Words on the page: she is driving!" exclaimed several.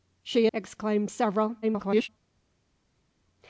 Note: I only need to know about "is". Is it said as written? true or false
false